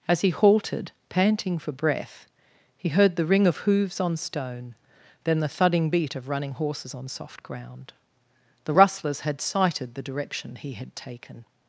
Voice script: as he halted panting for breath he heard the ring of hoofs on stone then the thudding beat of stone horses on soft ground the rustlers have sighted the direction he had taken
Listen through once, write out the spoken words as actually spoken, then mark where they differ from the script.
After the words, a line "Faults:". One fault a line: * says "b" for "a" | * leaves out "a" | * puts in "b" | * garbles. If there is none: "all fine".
as he halted panting for breath he heard the ring of hoofs on stone then the thudding beat of running horses on soft ground the rustlers had sighted the direction he had taken
Faults:
* says "running" for "stone"
* says "had" for "have"